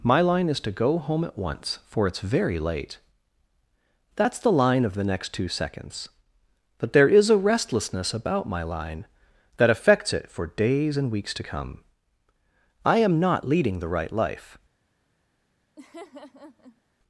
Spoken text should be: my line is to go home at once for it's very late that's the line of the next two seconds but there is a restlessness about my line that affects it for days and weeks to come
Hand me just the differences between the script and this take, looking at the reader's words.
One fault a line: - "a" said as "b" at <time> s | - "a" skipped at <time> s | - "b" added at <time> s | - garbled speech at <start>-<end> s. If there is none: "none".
- "i am not leading the right life" added at 12.8 s